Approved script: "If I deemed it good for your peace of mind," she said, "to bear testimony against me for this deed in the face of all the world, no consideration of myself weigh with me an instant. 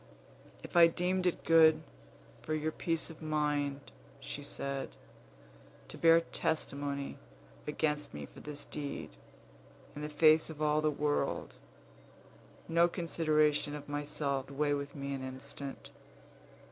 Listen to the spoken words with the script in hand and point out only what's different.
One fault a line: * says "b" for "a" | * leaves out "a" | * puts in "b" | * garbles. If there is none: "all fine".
all fine